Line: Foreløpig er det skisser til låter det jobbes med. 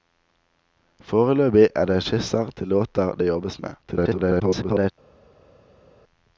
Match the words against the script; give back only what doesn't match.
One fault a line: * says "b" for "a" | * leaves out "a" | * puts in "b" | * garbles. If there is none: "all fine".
* garbles